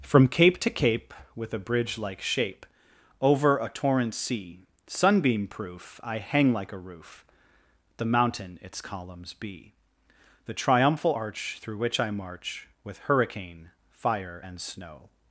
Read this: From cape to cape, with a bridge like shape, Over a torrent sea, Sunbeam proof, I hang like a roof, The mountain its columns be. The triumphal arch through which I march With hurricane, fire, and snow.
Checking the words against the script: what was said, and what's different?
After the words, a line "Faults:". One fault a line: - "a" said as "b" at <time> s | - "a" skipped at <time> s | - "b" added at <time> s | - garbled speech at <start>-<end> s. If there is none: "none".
From cape to cape, with a bridge like shape, Over a torrent sea, Sunbeam proof, I hang like a roof, The mountain its columns be. The triumphal arch through which I march With hurricane, fire, and snow.
Faults:
none